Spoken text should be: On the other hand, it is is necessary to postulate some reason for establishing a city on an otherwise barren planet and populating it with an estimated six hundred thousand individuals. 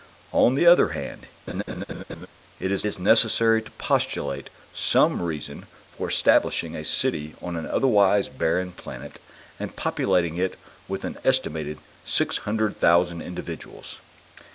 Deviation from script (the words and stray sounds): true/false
true